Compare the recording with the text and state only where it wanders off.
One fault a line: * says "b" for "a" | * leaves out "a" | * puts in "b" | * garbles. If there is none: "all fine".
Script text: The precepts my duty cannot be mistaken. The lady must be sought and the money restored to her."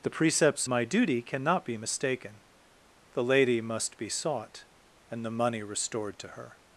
all fine